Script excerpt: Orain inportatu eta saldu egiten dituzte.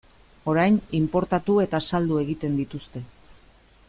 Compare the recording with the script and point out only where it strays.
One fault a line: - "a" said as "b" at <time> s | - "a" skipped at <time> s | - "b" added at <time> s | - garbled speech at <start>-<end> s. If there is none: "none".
none